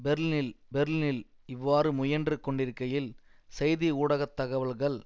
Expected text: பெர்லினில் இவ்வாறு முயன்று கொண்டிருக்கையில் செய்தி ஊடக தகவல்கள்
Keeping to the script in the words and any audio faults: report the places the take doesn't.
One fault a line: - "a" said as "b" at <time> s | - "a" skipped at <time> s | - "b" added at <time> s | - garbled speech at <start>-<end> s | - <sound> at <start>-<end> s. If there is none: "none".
- "பெர்லினில்" added at 0.7 s